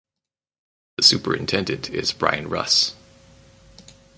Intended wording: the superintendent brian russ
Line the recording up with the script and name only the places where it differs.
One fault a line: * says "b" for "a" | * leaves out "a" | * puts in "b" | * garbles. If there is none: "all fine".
* puts in "is"